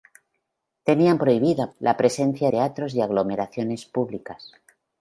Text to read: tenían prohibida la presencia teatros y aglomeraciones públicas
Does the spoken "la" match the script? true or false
true